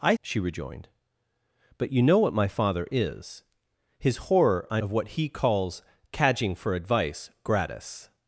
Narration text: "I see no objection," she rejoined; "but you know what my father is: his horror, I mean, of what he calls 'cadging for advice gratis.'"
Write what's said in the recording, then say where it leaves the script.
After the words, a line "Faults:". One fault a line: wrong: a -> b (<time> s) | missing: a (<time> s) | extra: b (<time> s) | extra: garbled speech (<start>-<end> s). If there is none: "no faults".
"I," she rejoined; "but you know what my father is: his horror, I of what he calls 'cadging for advice gratis.'"
Faults:
missing: see no objection (0.1 s)
missing: mean (4.8 s)